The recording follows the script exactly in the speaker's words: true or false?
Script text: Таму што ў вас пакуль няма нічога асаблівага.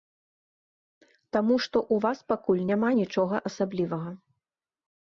true